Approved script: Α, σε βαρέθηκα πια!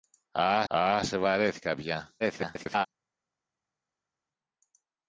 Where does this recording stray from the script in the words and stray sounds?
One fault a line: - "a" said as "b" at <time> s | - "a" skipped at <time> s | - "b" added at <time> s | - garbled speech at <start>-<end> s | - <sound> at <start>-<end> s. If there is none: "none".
- "α" added at 0.7 s
- garbled speech at 2.2-2.9 s